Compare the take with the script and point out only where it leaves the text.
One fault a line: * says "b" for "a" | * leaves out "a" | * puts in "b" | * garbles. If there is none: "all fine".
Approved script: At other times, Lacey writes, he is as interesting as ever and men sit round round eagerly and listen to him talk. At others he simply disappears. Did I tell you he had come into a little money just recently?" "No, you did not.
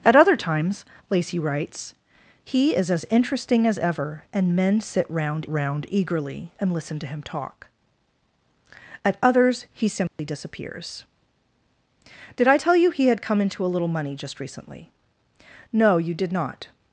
all fine